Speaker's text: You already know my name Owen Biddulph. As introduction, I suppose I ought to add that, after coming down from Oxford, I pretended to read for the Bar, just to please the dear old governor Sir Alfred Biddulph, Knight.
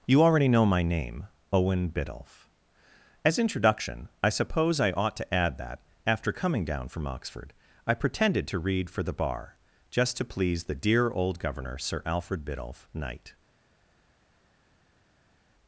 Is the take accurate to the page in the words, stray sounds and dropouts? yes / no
yes